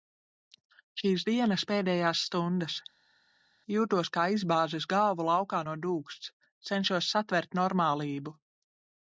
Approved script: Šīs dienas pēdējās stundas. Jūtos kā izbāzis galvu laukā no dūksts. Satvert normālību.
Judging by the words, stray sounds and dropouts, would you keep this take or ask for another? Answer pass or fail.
fail